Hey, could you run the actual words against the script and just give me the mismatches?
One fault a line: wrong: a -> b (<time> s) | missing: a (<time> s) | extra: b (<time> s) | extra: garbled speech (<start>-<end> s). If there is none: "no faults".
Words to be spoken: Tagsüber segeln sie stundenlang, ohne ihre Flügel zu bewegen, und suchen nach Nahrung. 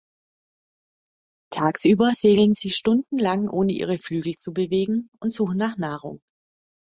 no faults